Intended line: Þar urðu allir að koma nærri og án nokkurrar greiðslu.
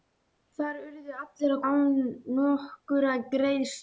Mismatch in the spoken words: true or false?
true